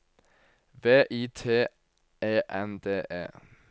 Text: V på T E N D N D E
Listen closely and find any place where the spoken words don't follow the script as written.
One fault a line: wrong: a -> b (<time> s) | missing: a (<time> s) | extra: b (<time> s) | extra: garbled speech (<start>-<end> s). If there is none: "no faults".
wrong: på -> I (1.1 s)
missing: N D (3.0 s)